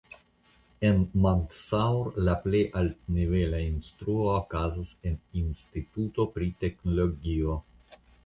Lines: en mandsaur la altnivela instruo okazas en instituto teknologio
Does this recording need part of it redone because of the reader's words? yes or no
yes